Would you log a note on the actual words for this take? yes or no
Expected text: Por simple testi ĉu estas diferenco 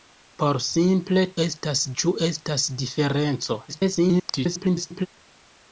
yes